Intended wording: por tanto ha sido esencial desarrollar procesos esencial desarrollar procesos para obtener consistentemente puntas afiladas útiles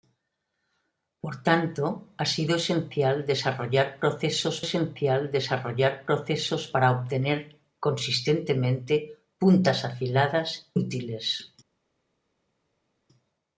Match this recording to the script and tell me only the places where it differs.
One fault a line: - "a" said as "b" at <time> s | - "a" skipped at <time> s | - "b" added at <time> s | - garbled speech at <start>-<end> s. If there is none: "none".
none